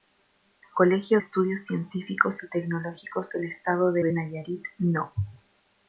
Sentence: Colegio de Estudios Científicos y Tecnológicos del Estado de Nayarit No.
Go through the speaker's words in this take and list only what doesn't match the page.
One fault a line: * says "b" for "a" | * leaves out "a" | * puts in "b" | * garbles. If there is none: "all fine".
* leaves out "de"
* puts in "de"